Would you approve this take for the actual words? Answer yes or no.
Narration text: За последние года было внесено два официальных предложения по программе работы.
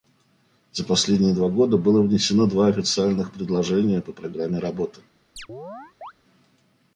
no